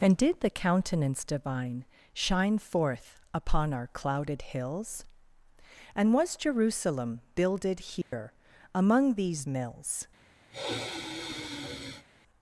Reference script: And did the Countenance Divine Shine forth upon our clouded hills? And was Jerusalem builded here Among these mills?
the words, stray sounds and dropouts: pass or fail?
fail